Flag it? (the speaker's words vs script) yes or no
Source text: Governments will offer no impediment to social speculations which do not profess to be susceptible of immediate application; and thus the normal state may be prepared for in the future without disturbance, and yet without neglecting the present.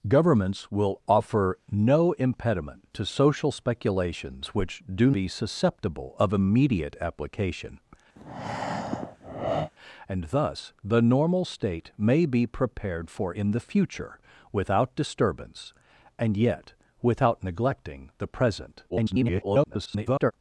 yes